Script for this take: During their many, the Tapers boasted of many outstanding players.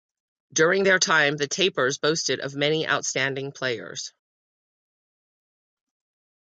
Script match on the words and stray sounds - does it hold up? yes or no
no